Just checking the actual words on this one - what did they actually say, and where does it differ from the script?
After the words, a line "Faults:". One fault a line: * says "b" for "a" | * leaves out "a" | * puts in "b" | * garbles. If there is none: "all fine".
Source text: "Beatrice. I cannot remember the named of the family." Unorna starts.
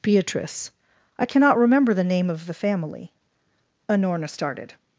"Beatrice. I cannot remember the name of the family." Unorna started.
Faults:
* says "name" for "named"
* says "started" for "starts"